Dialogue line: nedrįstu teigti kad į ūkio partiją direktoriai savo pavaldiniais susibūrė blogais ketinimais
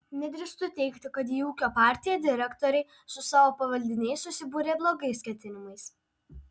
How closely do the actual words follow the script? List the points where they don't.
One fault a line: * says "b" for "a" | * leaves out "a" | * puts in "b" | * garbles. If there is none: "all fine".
* puts in "su"